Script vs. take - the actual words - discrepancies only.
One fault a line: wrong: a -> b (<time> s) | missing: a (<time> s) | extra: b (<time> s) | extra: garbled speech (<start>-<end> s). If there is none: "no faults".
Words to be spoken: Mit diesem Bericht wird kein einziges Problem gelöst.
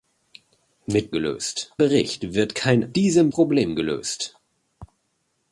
wrong: diesem -> gelöst (1.1 s)
wrong: einziges -> diesem (2.9 s)